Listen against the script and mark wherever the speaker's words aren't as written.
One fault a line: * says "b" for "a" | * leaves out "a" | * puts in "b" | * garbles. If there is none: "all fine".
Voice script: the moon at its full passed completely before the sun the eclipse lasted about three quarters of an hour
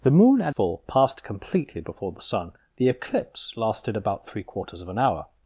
* leaves out "its"